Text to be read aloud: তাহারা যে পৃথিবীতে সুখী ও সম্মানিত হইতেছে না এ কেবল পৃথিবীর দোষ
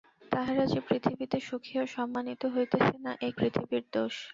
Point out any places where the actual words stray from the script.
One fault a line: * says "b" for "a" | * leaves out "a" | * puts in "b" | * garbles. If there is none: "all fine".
* leaves out "কেবল"